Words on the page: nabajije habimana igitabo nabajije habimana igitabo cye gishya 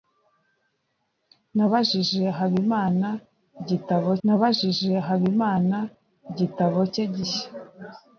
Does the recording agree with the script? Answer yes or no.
yes